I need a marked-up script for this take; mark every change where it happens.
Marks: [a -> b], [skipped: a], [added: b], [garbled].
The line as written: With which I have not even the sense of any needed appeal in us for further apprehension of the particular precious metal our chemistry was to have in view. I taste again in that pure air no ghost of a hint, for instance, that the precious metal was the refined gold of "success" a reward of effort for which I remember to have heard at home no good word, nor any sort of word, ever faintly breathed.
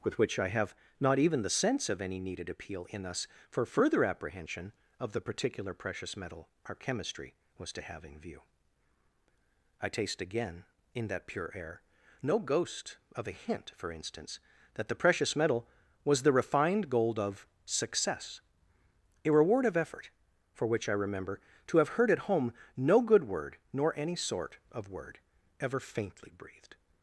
With which I have not even the sense of any needed appeal in us for further apprehension of the particular precious metal our chemistry was to have in view. I taste again in that pure air no ghost of a hint, for instance, that the precious metal was the refined gold of "success" a reward of effort for which I remember to have heard at home no good word, nor any sort of word, ever faintly breathed.